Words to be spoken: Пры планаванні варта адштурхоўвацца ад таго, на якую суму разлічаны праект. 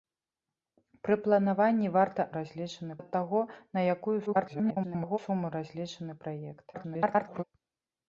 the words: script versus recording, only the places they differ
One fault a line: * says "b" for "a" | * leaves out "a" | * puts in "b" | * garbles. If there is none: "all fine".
* says "разлічаны" for "адштурхоўвацца"
* garbles
* garbles